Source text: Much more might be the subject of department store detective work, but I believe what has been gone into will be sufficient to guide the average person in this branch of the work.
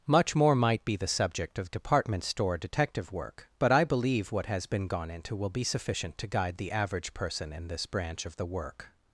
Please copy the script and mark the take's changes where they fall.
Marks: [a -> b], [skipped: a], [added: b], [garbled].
Much more might be the subject of department store detective work, but I believe what has been gone into will be sufficient to guide the average person in this branch of the work.